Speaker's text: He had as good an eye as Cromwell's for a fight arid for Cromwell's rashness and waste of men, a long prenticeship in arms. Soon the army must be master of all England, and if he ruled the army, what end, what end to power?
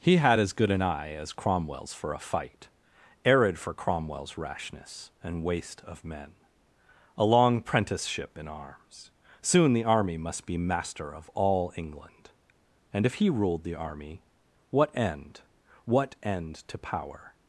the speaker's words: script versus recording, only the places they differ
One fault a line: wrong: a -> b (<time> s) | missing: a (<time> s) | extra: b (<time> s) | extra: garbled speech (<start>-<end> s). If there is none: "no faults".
no faults